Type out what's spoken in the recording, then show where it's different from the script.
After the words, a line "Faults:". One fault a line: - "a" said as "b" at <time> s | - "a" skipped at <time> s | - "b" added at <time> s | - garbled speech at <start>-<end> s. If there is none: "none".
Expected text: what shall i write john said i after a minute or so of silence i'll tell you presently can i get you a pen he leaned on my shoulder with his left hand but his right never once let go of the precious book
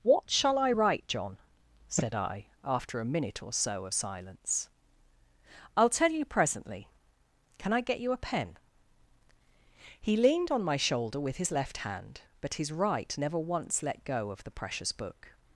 what shall i write john said i after a minute or so of silence i'll tell you presently can i get you a pen he leaned on my shoulder with his left hand but his right never once let go of the precious book
Faults:
none